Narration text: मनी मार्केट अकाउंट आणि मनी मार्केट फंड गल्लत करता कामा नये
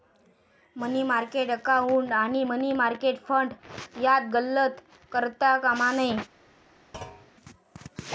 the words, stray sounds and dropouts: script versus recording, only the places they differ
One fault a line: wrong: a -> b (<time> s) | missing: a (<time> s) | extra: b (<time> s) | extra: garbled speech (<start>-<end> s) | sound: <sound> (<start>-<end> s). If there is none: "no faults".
extra: यात (4.0 s)
sound: thud (6.9-7.3 s)